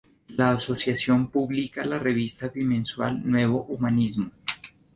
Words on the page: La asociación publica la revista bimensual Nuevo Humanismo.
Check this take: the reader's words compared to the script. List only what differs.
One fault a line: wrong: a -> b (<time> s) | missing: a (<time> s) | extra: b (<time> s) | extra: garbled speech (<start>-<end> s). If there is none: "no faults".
no faults